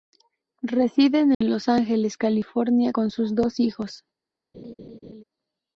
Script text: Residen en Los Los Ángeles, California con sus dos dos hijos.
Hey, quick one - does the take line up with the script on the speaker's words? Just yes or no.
no